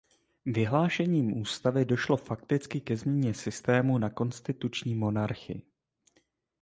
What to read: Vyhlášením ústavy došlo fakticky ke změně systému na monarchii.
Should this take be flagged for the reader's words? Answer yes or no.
yes